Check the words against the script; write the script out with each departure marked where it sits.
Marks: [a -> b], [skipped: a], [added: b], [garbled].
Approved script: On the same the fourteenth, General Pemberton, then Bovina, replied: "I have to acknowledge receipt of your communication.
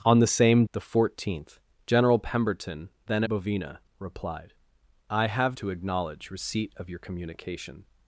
On the same the fourteenth, General Pemberton, then Bovina, replied: "I have to acknowledge receipt of your communication.